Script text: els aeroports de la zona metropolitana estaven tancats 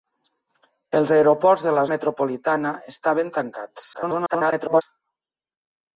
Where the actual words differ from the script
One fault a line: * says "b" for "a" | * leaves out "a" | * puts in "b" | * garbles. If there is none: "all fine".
* leaves out "zona"
* garbles